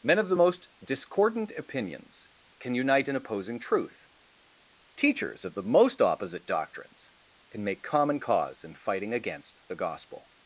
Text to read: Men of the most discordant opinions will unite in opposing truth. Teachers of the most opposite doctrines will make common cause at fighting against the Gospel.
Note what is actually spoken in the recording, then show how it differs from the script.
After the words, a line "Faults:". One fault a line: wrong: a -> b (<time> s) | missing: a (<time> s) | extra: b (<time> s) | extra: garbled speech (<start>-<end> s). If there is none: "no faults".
Men of the most discordant opinions can unite in opposing truth. Teachers of the most opposite doctrines can make common cause in fighting against the Gospel.
Faults:
wrong: will -> can (2.6 s)
wrong: will -> can (7.5 s)
wrong: at -> in (8.6 s)